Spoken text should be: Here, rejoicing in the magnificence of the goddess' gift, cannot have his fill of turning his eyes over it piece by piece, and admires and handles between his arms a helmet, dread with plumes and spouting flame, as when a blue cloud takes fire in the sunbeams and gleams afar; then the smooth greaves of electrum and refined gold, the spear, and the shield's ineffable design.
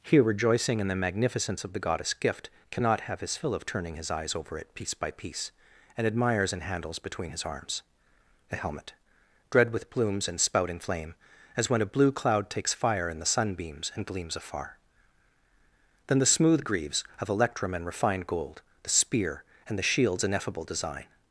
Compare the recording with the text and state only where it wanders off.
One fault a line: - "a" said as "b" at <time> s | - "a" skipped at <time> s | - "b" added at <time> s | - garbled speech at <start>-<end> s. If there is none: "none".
none